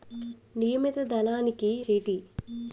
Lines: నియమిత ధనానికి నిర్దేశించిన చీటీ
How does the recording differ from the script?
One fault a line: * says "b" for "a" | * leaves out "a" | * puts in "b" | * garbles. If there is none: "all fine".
* leaves out "నిర్దేశించిన"